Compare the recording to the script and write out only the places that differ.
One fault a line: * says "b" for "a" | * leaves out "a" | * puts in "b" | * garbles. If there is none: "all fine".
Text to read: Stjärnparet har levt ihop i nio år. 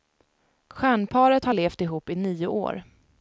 all fine